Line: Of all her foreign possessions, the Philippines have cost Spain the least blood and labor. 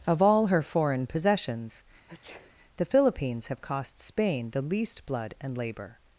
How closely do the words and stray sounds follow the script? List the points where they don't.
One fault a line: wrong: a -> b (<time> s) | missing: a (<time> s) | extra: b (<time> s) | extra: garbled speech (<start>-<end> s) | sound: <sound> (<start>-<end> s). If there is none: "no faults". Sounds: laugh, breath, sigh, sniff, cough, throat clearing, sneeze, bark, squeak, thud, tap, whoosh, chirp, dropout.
sound: sneeze (2.1-2.5 s)